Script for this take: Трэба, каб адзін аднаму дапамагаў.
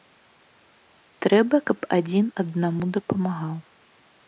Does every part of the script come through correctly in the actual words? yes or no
yes